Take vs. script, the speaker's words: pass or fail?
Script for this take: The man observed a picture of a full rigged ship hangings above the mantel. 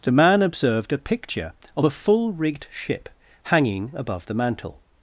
fail